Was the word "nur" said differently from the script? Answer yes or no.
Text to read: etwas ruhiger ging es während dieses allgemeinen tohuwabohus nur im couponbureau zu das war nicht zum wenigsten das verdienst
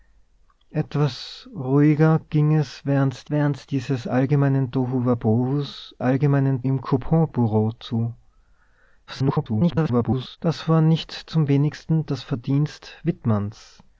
yes